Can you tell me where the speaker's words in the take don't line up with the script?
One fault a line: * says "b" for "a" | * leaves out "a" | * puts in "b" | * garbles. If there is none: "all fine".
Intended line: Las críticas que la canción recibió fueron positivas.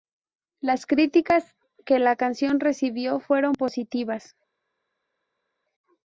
all fine